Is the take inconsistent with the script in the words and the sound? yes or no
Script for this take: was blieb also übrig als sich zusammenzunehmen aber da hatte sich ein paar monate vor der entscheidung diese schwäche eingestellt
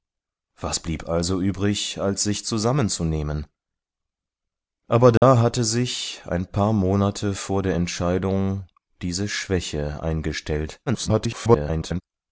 yes